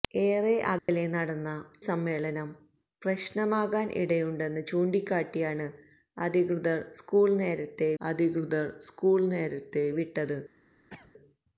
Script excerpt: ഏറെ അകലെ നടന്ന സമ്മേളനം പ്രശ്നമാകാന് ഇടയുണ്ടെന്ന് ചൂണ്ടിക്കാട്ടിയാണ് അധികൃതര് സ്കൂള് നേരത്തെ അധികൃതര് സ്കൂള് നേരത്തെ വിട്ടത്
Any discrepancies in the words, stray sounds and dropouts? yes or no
yes